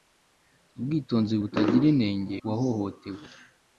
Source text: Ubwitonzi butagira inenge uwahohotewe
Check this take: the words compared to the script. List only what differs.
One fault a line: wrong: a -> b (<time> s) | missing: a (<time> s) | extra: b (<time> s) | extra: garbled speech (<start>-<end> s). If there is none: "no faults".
no faults